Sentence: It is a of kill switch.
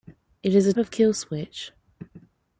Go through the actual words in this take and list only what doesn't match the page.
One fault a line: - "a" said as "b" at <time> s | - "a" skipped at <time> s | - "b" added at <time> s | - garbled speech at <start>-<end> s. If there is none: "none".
none